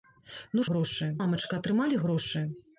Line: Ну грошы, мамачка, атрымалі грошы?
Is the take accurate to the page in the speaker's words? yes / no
yes